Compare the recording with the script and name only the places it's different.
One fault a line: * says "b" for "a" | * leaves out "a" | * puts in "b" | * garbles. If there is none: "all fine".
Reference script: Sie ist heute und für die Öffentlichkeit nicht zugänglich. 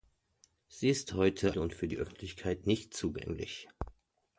all fine